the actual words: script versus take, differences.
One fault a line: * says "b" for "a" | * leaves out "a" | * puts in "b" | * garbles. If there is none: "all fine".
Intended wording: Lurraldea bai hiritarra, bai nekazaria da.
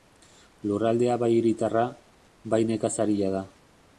all fine